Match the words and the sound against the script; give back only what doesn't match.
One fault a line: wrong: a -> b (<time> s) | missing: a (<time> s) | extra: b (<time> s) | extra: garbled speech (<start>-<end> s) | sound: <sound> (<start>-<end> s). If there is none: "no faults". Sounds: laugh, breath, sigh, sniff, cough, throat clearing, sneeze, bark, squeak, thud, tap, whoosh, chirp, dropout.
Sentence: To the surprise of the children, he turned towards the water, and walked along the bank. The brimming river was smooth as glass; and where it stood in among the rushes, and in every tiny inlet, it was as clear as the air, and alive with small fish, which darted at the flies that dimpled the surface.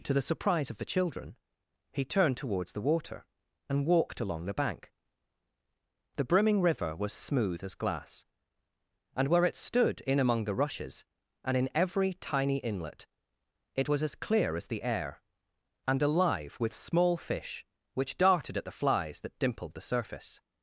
no faults